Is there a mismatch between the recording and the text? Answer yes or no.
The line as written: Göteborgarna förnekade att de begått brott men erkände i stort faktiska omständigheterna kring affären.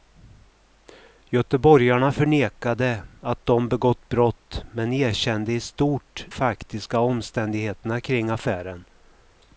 no